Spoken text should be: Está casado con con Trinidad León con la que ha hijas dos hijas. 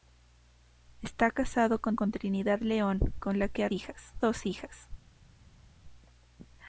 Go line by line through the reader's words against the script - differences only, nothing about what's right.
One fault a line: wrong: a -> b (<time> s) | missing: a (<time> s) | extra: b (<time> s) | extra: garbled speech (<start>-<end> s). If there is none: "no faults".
no faults